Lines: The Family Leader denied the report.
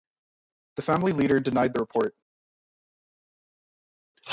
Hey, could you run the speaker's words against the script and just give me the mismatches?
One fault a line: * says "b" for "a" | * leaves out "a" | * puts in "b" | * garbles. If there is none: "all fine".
all fine